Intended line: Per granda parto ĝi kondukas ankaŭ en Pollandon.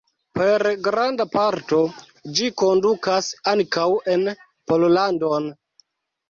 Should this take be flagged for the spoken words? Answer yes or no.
no